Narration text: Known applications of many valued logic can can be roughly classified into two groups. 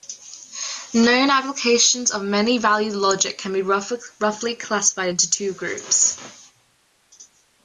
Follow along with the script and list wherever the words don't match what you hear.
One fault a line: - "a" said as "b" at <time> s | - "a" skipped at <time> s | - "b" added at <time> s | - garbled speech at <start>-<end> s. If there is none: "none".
- "can" skipped at 3.5 s